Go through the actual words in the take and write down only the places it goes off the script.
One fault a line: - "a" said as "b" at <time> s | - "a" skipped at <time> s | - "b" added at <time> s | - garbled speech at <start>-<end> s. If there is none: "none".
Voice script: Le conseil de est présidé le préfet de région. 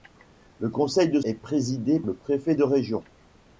none